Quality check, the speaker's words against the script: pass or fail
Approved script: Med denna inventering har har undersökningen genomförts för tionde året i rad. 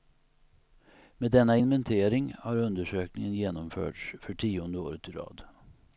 fail